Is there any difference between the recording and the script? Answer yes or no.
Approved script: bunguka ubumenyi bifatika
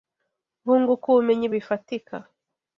no